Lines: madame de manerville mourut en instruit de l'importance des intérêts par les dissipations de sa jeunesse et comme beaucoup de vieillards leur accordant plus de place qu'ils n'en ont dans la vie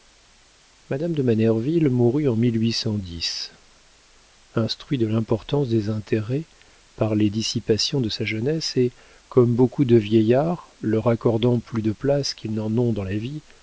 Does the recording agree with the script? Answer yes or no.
yes